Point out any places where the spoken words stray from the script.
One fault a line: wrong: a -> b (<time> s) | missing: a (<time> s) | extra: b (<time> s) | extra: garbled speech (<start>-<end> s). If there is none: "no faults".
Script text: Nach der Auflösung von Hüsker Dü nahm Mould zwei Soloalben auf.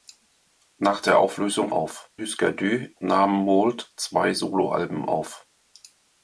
wrong: von -> auf (1.7 s)